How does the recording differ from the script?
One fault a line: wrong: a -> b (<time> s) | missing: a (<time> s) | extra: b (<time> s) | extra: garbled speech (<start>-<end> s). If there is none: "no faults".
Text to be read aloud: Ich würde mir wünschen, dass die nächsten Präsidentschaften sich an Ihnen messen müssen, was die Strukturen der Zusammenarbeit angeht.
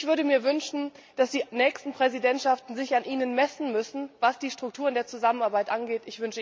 no faults